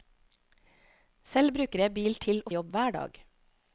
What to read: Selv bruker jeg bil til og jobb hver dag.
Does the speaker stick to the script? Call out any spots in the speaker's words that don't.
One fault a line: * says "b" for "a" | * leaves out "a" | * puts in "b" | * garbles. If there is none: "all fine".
all fine